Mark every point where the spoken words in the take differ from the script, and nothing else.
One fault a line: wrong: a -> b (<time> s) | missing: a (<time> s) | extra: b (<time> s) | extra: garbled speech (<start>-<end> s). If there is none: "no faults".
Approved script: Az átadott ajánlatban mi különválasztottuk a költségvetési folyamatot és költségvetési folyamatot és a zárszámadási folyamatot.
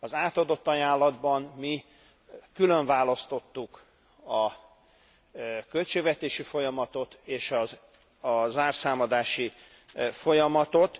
missing: költségvetési folyamatot és (7.5 s)